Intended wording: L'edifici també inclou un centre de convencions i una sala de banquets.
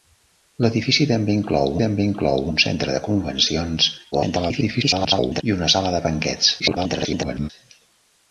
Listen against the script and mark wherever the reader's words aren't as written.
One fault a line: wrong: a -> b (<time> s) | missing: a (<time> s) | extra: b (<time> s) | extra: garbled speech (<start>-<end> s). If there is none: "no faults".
extra: també inclou (1.8 s)
extra: garbled speech (4.1-5.4 s)
extra: garbled speech (6.6-7.5 s)